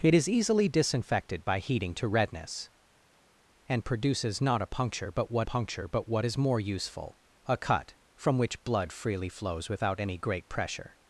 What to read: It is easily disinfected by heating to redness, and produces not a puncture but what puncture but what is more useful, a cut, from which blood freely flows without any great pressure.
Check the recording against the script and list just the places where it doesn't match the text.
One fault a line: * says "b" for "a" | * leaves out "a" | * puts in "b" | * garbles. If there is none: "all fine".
all fine